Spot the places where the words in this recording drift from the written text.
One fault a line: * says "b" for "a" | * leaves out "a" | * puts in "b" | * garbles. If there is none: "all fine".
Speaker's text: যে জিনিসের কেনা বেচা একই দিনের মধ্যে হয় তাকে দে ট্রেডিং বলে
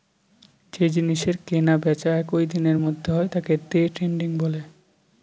all fine